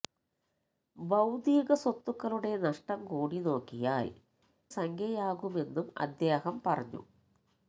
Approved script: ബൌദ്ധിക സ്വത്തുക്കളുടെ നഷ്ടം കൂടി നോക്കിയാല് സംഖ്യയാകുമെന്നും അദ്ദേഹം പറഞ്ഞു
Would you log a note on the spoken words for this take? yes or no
no